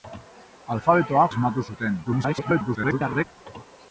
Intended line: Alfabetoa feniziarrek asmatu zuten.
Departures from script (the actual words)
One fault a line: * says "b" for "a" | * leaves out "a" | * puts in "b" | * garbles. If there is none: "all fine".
* leaves out "feniziarrek"
* garbles